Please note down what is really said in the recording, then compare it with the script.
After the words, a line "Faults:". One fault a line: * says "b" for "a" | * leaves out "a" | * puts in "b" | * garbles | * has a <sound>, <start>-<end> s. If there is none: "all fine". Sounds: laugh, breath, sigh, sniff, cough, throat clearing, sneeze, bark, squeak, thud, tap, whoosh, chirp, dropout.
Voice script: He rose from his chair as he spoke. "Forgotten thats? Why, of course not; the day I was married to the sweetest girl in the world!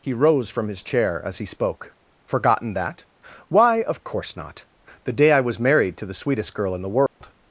He rose from his chair as he spoke. "Forgotten that? Why, of course not; the day I was married to the sweetest girl in the world!
Faults:
* says "that" for "thats"
* has a dropout, 7.1-7.2 s